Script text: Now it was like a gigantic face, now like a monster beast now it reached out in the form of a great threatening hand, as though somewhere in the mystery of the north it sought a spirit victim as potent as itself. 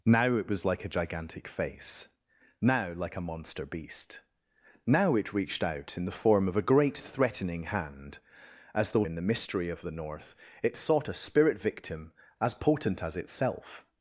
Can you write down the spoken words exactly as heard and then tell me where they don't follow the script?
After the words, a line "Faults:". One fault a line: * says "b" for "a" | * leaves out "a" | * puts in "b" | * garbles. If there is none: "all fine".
Now it was like a gigantic face, now like a monster beast now it reached out in the form of a great threatening hand, as though in the mystery of the north it sought a spirit victim as potent as itself.
Faults:
* leaves out "somewhere"